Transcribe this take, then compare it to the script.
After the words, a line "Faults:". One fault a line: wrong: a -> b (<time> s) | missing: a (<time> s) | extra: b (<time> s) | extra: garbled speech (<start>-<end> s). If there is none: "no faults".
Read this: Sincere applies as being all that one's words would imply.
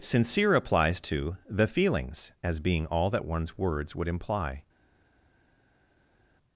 Sincere applies to the feelings, as being all that one's words would imply.
Faults:
extra: to the feelings (1.0 s)